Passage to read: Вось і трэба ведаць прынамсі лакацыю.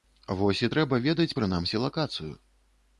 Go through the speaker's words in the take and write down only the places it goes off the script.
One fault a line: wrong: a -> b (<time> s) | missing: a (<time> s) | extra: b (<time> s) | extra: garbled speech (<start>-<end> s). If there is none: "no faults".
no faults